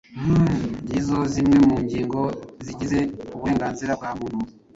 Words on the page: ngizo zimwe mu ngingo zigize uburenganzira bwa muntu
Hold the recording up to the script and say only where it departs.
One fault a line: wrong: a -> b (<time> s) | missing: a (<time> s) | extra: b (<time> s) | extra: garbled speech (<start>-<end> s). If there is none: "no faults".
no faults